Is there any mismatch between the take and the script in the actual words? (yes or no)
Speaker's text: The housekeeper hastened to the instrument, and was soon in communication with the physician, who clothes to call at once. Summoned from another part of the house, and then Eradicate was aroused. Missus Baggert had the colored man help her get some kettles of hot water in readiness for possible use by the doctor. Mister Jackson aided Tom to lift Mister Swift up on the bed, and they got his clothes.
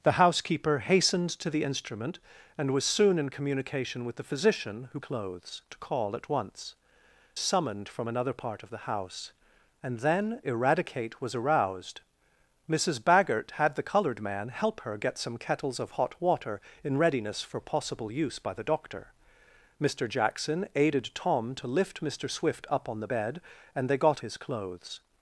no